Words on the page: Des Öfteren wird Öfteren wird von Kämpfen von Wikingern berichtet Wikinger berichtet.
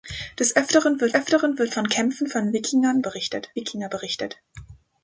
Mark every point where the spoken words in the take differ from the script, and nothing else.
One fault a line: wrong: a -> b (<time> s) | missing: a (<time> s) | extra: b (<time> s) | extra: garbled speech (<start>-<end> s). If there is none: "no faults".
no faults